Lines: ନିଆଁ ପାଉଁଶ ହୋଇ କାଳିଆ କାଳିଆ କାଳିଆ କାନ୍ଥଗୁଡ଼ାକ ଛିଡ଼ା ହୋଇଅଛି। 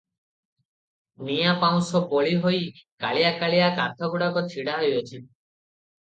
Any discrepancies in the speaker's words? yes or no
yes